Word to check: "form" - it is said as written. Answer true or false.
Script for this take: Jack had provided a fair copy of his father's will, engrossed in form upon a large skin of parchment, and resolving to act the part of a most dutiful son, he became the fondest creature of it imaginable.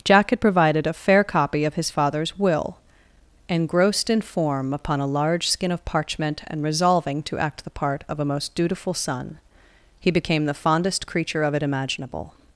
true